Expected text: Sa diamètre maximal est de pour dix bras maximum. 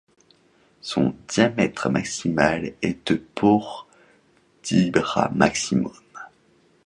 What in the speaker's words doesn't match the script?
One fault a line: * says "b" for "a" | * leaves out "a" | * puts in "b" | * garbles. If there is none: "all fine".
* says "Son" for "Sa"